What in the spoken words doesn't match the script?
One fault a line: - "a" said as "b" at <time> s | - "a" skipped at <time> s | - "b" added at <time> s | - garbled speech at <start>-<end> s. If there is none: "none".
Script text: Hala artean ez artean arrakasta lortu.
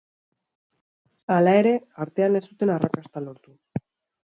- "ere" added at 1.6 s
- "artean" said as "zuten" at 2.5 s